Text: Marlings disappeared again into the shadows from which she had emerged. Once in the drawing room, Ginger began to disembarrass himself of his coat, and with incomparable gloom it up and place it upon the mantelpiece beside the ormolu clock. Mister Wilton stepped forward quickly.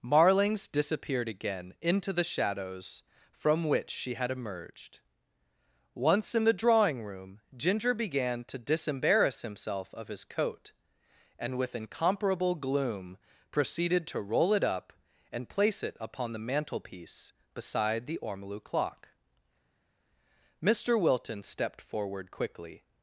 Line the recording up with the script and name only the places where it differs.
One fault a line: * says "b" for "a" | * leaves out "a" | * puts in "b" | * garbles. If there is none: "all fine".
* puts in "proceeded to roll"